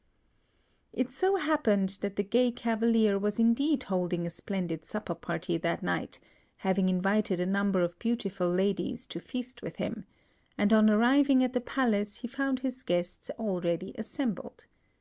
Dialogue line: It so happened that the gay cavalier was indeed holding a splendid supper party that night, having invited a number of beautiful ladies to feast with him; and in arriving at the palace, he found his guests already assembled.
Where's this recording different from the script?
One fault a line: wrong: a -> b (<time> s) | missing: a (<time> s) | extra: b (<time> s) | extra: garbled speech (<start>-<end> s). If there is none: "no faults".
wrong: in -> on (10.7 s)